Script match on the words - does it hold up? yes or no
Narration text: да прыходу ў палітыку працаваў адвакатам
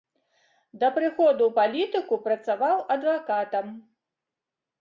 yes